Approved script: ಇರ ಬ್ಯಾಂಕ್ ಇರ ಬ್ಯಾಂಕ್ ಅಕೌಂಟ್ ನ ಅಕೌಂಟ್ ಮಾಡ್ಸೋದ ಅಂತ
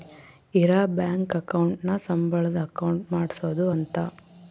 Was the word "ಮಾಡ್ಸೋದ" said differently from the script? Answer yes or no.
no